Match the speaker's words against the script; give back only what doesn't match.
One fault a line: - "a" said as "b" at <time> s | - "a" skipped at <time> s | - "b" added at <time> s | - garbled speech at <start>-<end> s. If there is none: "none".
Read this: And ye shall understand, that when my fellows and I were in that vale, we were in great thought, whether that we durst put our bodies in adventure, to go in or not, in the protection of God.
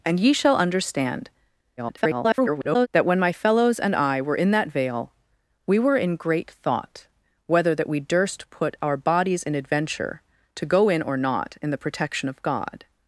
- garbled speech at 1.8-2.9 s